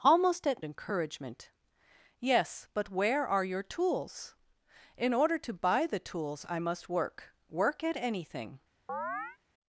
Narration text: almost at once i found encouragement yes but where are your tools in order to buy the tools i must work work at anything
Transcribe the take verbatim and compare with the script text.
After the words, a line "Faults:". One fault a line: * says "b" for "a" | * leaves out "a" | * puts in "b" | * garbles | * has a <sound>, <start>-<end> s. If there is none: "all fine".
almost at encouragement yes but where are your tools in order to buy the tools i must work work at anything
Faults:
* leaves out "once i found"
* has a chirp, 8.9-9.4 s